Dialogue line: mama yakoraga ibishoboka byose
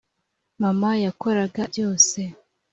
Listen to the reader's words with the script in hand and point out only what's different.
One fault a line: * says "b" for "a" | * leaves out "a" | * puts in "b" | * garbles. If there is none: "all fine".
* leaves out "ibishoboka"